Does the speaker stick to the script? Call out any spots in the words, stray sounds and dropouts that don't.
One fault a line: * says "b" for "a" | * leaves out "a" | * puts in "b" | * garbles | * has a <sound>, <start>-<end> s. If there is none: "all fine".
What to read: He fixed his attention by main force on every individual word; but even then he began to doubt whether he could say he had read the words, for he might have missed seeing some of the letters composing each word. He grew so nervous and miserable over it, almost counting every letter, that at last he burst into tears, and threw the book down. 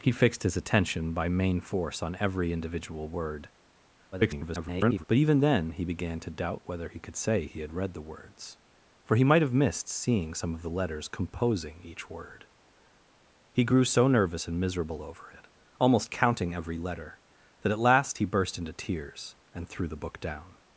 * garbles